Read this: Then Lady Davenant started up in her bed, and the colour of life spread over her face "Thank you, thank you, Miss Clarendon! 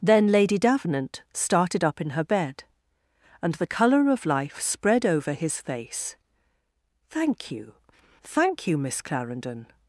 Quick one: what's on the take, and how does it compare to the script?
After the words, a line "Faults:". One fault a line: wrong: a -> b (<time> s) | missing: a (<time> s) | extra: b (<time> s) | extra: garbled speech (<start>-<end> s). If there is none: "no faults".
Then Lady Davenant started up in her bed, and the colour of life spread over his face "Thank you, thank you, Miss Clarendon!
Faults:
wrong: her -> his (5.3 s)